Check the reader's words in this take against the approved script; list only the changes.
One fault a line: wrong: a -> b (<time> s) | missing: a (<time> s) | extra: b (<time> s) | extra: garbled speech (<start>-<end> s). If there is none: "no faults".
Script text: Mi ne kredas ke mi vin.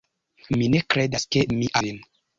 no faults